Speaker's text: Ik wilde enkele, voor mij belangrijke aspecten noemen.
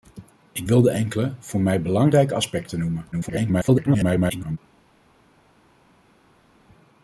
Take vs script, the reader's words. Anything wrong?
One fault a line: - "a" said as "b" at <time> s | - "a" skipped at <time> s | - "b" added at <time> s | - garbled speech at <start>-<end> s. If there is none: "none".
- garbled speech at 3.1-4.6 s